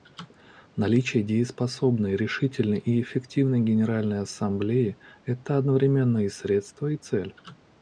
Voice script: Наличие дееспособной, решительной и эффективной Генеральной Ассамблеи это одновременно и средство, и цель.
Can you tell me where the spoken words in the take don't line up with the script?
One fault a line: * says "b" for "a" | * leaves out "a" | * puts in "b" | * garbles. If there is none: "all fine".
all fine